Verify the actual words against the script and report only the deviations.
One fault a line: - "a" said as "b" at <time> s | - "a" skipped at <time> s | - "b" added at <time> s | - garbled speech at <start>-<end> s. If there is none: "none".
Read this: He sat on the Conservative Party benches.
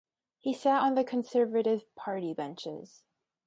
none